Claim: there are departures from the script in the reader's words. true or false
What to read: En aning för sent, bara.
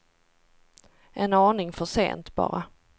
false